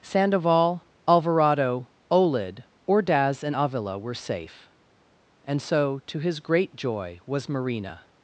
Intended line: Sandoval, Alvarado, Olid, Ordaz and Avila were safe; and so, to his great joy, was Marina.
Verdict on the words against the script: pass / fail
pass